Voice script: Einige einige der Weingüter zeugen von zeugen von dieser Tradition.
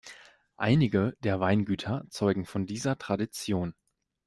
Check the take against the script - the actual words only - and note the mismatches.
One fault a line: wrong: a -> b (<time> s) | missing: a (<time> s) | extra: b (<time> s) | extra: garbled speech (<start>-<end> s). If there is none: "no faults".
missing: einige (1.1 s)
missing: zeugen von (2.7 s)